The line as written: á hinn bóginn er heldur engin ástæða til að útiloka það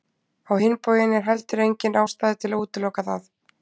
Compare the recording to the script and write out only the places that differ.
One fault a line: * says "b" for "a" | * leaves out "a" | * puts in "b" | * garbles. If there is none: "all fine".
all fine